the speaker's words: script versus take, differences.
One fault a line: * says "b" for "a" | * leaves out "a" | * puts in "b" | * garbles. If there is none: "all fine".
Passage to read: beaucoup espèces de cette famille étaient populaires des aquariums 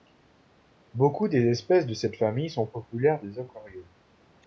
* puts in "des"
* says "sont" for "étaient"